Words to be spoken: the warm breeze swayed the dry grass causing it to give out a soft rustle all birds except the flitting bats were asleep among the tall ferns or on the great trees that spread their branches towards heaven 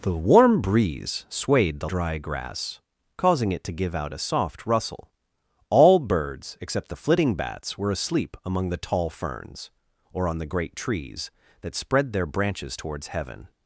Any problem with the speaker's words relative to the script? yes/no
no